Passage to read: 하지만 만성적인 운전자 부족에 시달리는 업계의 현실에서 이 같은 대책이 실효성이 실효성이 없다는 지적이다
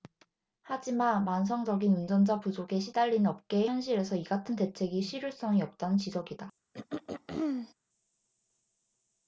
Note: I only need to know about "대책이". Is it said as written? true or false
true